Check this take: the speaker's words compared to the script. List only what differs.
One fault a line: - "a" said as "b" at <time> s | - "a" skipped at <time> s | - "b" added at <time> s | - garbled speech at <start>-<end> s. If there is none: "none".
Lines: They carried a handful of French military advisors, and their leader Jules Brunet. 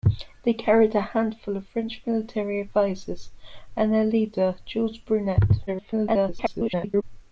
- garbled speech at 5.7-7.0 s